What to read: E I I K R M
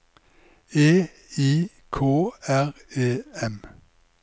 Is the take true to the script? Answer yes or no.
no